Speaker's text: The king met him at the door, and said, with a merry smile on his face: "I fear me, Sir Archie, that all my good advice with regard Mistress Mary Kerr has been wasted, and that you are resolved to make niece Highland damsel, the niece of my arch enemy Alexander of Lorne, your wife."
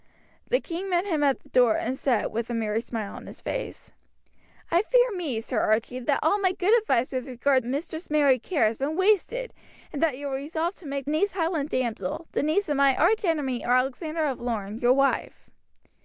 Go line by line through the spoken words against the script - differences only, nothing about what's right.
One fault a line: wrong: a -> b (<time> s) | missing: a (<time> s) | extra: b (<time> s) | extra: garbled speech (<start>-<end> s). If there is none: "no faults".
no faults